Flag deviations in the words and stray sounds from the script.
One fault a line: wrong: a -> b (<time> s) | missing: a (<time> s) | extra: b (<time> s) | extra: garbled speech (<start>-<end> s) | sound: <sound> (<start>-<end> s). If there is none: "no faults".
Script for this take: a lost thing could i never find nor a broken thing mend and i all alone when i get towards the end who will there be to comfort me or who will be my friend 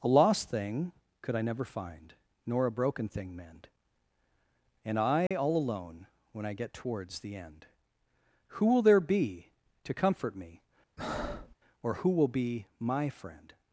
sound: dropout (5.3-5.3 s)
sound: breath (11.0-11.5 s)